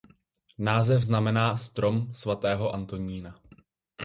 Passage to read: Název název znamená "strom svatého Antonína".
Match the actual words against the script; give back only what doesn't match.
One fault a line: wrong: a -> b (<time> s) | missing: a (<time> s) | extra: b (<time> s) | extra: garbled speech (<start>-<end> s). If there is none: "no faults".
missing: název (1.0 s)